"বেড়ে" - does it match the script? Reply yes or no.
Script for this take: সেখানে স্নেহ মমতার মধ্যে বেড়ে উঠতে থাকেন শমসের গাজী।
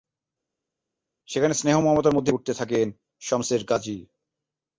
no